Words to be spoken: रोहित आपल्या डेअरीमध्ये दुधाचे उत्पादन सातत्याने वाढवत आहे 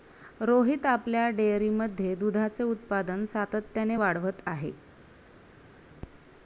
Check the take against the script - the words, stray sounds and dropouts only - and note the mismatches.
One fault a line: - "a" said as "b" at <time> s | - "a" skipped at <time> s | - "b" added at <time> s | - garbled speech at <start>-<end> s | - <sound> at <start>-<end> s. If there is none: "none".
none